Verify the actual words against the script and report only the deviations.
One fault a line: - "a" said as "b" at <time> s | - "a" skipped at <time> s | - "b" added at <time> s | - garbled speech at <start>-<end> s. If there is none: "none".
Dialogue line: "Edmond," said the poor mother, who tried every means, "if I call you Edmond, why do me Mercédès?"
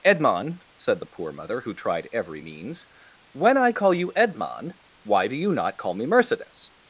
- "if" said as "when" at 3.3 s
- "you not call" added at 5.4 s